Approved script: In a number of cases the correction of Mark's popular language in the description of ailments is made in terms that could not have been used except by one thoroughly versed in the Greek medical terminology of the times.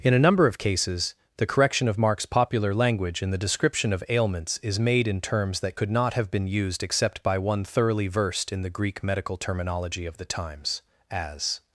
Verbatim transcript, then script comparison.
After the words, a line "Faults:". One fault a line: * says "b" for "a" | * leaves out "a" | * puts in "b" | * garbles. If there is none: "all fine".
In a number of cases the correction of Mark's popular language in the description of ailments is made in terms that could not have been used except by one thoroughly versed in the Greek medical terminology of the times. As
Faults:
* puts in "As"